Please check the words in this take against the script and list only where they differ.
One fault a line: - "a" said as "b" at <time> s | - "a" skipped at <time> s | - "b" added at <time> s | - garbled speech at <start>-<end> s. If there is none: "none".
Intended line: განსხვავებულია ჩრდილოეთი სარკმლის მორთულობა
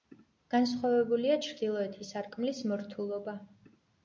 none